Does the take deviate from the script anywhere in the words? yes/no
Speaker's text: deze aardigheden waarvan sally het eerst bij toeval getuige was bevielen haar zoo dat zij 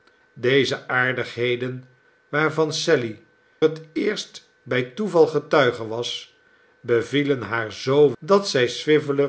no